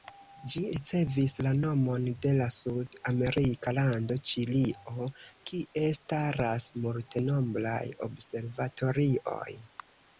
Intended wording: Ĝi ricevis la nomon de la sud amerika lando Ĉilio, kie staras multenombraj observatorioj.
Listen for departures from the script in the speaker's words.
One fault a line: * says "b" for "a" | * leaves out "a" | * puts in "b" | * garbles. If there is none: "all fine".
all fine